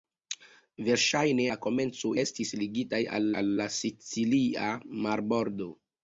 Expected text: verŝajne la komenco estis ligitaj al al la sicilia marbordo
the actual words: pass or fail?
pass